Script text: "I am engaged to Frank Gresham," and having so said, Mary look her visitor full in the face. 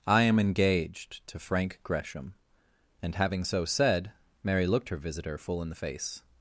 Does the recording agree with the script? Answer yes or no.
no